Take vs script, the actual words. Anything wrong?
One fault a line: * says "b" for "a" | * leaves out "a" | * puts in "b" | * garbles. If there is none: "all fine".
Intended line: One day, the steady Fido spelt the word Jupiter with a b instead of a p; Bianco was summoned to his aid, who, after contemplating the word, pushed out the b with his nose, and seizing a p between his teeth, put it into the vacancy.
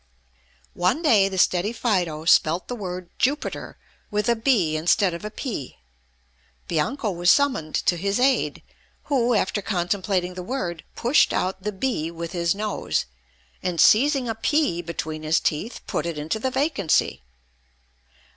all fine